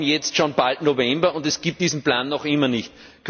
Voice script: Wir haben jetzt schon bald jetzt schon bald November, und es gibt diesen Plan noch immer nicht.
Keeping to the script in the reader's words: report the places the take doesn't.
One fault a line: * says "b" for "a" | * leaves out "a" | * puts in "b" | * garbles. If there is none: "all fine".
* leaves out "jetzt schon bald"